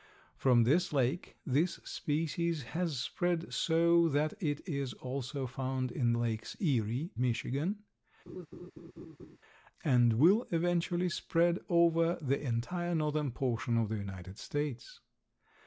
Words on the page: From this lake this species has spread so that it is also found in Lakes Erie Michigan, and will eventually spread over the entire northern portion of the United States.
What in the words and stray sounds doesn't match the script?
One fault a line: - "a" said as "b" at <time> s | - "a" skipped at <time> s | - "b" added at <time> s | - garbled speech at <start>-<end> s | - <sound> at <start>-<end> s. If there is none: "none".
- laugh at 8.3-9.4 s